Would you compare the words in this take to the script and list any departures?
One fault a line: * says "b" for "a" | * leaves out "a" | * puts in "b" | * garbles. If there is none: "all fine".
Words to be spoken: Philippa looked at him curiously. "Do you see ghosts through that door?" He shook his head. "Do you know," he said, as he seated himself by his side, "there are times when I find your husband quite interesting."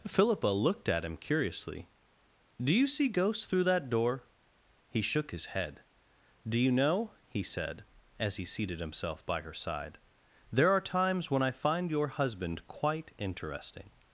* says "her" for "his"